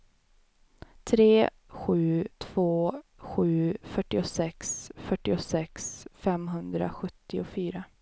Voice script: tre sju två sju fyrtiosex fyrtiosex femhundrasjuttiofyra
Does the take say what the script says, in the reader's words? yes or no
yes